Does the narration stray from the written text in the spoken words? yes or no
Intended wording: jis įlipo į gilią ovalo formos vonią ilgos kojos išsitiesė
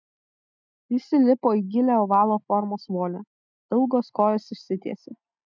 no